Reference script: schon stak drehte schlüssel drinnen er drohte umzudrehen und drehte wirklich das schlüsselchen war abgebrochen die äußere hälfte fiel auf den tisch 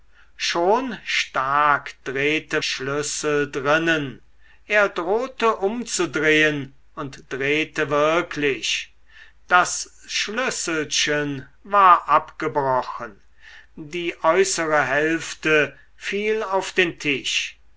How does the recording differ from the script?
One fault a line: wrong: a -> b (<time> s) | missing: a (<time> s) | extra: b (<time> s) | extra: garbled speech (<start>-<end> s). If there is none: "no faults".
no faults